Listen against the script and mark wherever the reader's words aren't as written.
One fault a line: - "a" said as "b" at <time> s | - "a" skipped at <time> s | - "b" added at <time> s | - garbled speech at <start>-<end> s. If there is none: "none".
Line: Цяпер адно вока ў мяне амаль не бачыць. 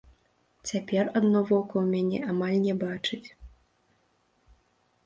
none